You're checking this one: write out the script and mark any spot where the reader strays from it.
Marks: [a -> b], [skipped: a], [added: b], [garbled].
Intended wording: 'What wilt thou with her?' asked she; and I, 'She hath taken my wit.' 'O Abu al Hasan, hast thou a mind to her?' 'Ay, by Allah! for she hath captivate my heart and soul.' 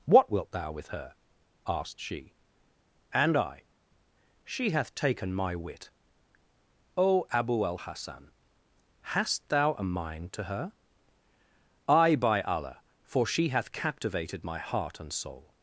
'What wilt thou with her?' asked she; and I, 'She hath taken my wit.' 'O Abu al Hasan, hast thou a mind to her?' 'Ay, by Allah! for she hath [captivate -> captivated] my heart and soul.'